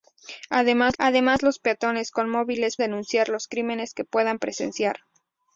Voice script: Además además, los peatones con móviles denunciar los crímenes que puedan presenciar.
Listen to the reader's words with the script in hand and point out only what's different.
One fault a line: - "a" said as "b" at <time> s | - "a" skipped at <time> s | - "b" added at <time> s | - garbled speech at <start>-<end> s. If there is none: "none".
none